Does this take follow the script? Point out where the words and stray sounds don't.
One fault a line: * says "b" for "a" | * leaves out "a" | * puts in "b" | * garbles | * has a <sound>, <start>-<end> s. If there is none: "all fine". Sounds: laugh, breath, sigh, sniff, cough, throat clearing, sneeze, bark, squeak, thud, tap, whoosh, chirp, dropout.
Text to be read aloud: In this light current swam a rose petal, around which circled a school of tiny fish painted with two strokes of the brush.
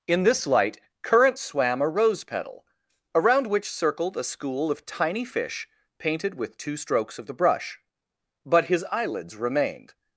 * puts in "But his eyelids remained"